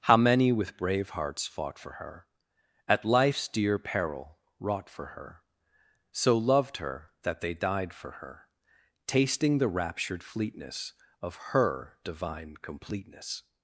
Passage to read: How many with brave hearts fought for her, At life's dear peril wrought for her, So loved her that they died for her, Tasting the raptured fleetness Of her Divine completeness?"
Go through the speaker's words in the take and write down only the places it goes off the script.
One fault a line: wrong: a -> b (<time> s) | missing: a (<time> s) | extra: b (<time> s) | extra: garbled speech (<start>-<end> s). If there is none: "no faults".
no faults